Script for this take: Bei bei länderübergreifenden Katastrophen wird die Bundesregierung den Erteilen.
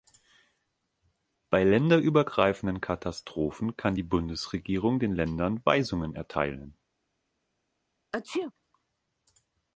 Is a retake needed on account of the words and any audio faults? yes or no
yes